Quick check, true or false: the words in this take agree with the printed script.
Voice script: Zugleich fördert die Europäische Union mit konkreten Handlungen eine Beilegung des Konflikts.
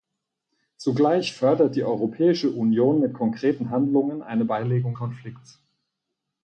false